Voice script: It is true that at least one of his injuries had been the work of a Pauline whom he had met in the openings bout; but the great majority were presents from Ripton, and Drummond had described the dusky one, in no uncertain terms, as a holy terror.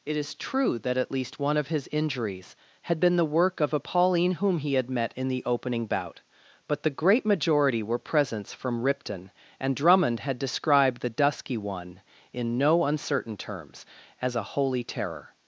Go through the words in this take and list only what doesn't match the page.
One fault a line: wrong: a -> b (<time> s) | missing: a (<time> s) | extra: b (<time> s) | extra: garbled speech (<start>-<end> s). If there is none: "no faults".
wrong: openings -> opening (5.4 s)